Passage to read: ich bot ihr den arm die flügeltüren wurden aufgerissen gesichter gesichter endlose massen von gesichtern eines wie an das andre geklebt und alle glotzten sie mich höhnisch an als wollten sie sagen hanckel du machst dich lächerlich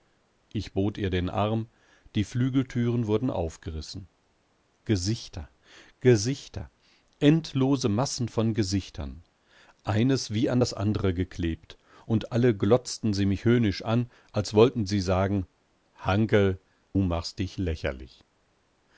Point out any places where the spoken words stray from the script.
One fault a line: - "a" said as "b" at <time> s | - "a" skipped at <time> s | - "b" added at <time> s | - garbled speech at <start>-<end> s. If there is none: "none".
- "du" skipped at 16.6 s